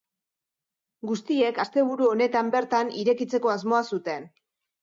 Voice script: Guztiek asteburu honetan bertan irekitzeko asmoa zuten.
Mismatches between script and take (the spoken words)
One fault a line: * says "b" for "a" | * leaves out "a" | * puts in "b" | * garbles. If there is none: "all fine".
all fine